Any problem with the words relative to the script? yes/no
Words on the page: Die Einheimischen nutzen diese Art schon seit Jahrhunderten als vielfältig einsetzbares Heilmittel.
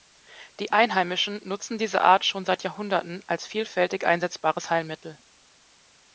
no